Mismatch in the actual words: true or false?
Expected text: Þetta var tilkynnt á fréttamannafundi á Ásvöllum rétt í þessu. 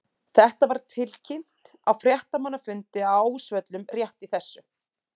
false